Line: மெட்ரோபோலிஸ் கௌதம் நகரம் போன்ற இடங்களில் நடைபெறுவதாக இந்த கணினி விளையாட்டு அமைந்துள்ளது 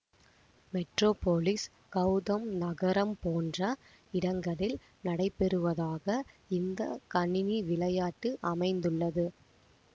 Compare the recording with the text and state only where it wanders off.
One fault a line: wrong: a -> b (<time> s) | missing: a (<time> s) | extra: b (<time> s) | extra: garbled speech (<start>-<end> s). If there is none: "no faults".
no faults